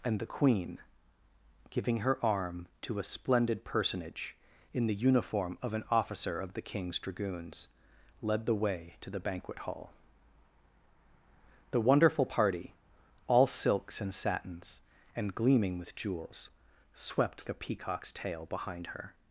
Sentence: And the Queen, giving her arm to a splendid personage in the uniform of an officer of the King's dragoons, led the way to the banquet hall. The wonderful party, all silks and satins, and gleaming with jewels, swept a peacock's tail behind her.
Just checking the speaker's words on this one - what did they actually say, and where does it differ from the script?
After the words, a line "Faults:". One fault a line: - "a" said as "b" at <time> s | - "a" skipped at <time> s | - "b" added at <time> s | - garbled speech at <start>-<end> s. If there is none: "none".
And the Queen, giving her arm to a splendid personage in the uniform of an officer of the King's dragoons, led the way to the banquet hall. The wonderful party, all silks and satins, and gleaming with jewels, swept a peacock's tail behind her.
Faults:
none